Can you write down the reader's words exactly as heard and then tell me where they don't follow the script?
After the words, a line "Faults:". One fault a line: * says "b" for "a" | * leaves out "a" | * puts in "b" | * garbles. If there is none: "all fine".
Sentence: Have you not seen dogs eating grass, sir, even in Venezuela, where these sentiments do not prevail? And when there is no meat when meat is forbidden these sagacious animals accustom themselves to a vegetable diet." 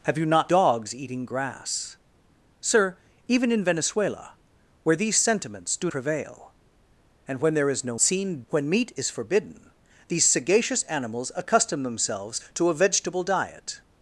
Have you not dogs eating grass, sir, even in Venezuela, where these sentiments do prevail? And when there is no seen when meat is forbidden these sagacious animals accustom themselves to a vegetable diet."
Faults:
* leaves out "seen"
* leaves out "not"
* says "seen" for "meat"